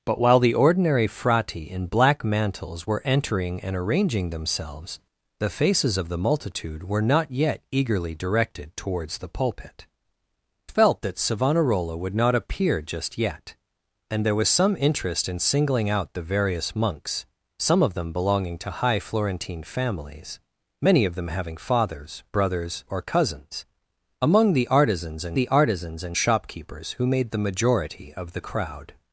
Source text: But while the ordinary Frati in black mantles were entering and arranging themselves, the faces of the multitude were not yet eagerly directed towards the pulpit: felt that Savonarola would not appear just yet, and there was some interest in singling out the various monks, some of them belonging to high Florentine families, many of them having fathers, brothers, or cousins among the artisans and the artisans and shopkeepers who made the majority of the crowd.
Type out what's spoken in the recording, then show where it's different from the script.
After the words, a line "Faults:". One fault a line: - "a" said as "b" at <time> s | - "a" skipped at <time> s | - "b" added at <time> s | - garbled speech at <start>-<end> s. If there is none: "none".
But while the ordinary Frati in black mantles were entering and arranging themselves, the faces of the multitude were not yet eagerly directed towards the pulpit: felt that Savonarola would not appear just yet, and there was some interest in singling out the various monks, some of them belonging to high Florentine families, many of them having fathers, brothers, or cousins among the artisans and the artisans and shopkeepers who made the majority of the crowd.
Faults:
none